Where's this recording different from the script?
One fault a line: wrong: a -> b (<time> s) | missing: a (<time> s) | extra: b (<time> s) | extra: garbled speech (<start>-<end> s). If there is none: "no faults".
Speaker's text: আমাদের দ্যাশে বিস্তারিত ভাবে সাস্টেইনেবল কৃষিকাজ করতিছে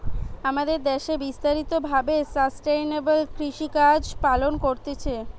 extra: পালন (4.2 s)